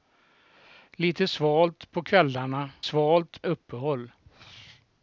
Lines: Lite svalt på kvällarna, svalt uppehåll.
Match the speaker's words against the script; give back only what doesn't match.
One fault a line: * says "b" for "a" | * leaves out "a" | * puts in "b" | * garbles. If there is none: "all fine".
all fine